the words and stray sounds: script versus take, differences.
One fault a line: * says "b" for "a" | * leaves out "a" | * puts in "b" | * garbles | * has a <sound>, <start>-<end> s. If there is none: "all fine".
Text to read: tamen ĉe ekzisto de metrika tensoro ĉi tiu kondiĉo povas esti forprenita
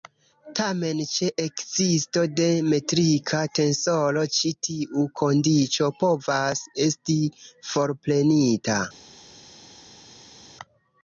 all fine